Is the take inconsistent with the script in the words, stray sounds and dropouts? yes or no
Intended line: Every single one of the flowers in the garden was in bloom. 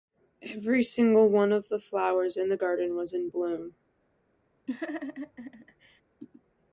yes